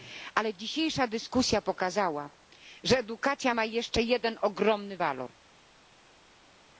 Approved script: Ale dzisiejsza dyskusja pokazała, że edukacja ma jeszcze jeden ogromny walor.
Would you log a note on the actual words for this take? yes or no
no